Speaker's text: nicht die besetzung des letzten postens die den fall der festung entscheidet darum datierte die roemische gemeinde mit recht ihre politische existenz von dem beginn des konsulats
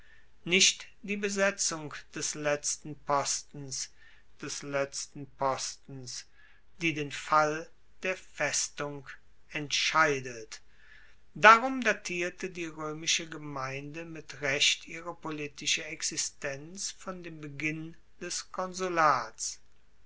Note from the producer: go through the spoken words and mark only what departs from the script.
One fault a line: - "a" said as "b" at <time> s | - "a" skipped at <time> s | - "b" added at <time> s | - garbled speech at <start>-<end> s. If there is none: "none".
- "des letzten postens" added at 4.4 s